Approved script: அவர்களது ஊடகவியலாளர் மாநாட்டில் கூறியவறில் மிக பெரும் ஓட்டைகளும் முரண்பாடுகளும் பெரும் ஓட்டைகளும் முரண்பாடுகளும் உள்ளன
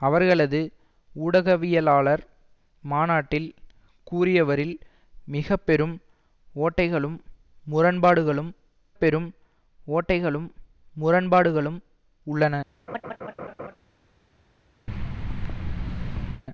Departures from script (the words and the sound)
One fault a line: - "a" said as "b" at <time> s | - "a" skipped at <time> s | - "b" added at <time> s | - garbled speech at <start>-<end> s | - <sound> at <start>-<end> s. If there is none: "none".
- laugh at 12.9-13.8 s
- thud at 14.9-16.4 s